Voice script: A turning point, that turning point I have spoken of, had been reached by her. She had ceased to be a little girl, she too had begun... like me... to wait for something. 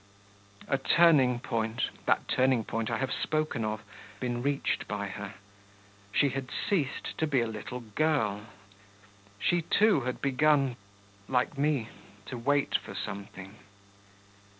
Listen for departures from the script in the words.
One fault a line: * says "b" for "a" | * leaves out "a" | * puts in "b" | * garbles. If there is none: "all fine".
* leaves out "had"